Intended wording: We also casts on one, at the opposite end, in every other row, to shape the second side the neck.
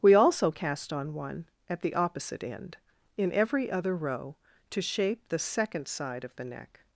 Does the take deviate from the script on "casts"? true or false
true